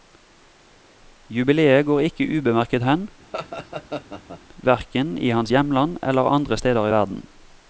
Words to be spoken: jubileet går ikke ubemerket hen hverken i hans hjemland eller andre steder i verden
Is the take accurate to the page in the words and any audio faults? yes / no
no